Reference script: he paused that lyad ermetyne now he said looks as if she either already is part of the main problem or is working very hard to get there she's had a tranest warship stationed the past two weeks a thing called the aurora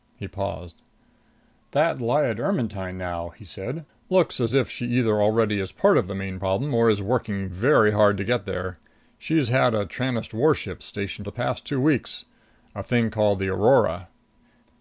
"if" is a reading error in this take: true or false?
false